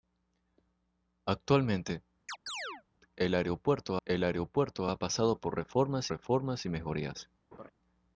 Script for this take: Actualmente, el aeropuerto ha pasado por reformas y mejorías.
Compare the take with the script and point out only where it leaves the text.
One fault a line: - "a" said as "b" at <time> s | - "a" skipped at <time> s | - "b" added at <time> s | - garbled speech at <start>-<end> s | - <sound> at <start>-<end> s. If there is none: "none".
- chirp at 2.3-2.8 s
- "el aeropuerto" added at 4.1 s
- "reformas" added at 6.1 s
- laugh at 7.5-7.7 s